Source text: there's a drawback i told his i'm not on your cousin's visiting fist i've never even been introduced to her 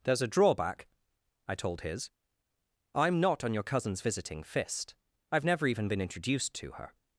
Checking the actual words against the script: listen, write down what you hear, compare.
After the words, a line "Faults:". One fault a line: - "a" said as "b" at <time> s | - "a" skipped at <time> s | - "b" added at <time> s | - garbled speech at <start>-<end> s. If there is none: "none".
there's a drawback i told his i'm not on your cousin's visiting fist i've never even been introduced to her
Faults:
none